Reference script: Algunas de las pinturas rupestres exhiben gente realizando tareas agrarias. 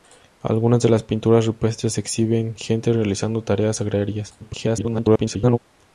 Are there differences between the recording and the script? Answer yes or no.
yes